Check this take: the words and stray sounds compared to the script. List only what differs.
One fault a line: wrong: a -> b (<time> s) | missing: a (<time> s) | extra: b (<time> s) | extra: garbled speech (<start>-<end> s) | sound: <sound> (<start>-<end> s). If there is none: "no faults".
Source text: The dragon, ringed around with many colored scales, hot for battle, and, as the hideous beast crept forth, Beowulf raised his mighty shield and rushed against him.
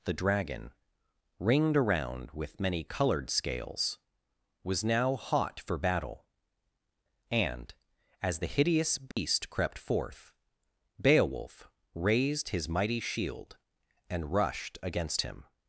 extra: was now (4.6 s)
sound: dropout (9.1-9.2 s)